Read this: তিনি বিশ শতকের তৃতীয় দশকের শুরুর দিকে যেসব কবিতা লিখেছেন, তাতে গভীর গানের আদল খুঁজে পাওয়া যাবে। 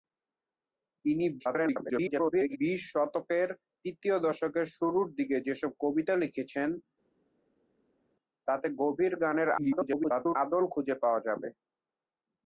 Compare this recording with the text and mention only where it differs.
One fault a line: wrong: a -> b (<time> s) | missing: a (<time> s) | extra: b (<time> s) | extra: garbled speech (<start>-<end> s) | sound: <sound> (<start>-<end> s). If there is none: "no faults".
extra: garbled speech (1.4-2.6 s)
extra: garbled speech (9.6-10.4 s)